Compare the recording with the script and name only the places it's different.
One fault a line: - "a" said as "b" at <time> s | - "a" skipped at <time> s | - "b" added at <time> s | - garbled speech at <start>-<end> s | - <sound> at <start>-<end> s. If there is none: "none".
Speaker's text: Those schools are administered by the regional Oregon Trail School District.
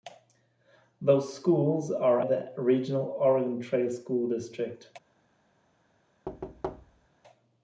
- "administered by" skipped at 2.2 s
- thud at 6.3-7.1 s